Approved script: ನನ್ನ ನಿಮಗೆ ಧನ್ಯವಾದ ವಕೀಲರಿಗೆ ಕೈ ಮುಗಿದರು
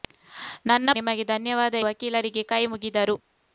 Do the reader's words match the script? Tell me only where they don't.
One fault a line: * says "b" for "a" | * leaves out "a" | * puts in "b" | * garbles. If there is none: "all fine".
all fine